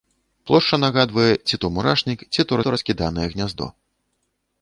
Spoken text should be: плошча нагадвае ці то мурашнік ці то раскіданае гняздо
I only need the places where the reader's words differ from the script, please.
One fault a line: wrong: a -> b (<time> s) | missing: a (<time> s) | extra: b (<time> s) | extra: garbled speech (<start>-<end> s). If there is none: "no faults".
extra: то (2.7 s)